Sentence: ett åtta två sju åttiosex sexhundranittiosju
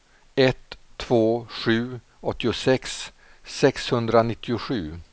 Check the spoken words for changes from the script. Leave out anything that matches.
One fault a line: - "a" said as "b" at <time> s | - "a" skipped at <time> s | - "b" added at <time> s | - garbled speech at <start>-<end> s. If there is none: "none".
- "åtta" skipped at 0.8 s